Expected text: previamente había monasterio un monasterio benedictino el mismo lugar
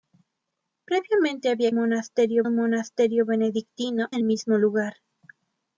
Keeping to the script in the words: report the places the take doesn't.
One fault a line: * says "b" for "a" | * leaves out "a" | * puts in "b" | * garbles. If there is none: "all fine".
all fine